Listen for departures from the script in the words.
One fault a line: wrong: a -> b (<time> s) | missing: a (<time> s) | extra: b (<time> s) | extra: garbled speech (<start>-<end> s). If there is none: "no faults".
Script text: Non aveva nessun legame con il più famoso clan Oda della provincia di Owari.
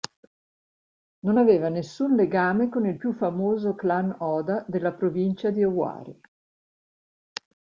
no faults